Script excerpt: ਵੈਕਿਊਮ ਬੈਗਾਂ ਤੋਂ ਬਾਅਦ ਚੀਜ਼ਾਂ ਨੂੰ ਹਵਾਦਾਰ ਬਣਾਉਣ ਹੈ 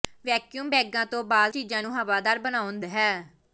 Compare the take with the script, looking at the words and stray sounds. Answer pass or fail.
pass